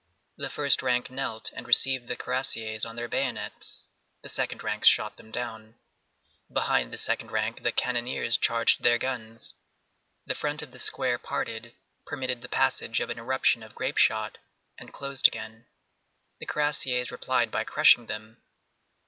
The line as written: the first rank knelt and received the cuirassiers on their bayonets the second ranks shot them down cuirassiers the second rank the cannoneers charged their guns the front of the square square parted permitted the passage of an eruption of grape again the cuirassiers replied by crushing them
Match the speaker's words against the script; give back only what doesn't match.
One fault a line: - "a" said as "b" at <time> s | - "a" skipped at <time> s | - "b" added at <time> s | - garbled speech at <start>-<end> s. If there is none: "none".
- "cuirassiers" said as "behind" at 6.5 s
- "square" skipped at 11.2 s
- "shot and closed" added at 14.0 s